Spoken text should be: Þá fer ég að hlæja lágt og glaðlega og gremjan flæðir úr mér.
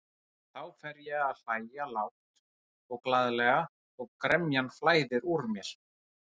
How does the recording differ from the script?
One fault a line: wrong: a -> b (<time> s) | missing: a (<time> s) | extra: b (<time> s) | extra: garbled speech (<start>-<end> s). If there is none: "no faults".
no faults